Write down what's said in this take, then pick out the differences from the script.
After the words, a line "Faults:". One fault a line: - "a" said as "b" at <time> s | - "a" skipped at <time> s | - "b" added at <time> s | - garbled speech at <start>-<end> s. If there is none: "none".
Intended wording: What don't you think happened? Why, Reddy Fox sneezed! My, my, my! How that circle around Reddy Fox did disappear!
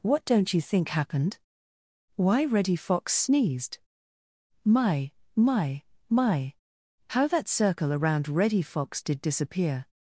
What don't you think happened? Why, Reddy Fox sneezed! My, my, my! How that circle around Reddy Fox did disappear!
Faults:
none